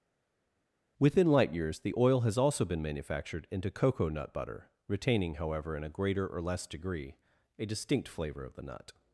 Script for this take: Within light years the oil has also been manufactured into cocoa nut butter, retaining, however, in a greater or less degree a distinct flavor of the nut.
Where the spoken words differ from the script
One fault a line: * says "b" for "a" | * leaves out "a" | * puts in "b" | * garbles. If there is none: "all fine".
all fine